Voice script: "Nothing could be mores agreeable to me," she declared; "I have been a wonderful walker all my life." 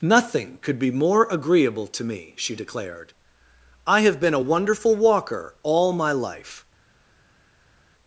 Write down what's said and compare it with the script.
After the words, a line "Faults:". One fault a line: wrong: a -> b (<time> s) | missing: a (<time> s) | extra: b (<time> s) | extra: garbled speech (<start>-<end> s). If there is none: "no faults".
"Nothing could be more agreeable to me," she declared; "I have been a wonderful walker all my life."
Faults:
wrong: mores -> more (0.9 s)